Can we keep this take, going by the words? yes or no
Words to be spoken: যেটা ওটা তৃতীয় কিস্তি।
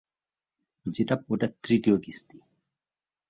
yes